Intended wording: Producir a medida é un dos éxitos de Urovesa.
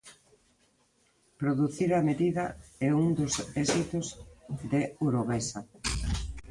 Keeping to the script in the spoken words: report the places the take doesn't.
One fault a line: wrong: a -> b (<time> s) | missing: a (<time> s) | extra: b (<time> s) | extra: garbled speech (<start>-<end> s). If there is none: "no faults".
no faults